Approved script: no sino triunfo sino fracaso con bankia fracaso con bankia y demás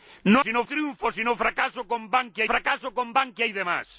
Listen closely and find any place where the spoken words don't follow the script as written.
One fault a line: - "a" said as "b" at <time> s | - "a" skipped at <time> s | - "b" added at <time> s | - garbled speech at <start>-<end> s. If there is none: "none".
none